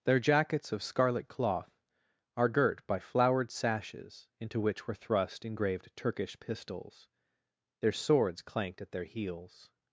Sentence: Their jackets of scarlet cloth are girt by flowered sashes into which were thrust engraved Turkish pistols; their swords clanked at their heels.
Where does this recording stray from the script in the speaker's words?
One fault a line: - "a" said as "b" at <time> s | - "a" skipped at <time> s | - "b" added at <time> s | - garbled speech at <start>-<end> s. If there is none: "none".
none